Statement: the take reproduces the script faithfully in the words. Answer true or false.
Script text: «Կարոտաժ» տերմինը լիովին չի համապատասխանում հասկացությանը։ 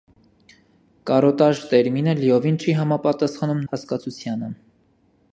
true